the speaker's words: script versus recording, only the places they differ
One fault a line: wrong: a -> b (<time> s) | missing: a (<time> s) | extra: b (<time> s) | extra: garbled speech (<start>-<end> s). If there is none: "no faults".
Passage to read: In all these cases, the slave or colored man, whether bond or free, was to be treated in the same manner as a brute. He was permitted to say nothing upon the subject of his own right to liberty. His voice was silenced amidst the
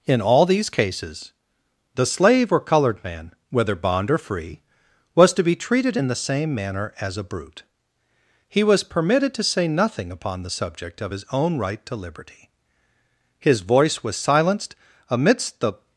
no faults